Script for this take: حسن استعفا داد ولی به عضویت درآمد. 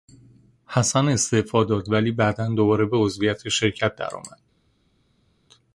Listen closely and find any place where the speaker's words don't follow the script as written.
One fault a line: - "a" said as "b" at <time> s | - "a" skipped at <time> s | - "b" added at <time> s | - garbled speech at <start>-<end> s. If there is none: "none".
- "بعدا دوباره" added at 2.1 s
- "شرکت" added at 3.5 s